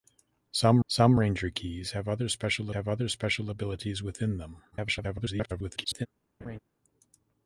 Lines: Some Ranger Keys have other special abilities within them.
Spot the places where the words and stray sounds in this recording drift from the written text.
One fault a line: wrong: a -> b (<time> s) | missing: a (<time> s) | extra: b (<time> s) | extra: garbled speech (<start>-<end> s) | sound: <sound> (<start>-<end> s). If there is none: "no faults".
extra: some (0.9 s)
extra: have other special (2.7 s)
extra: garbled speech (4.7-6.1 s)
sound: laugh (6.4-6.6 s)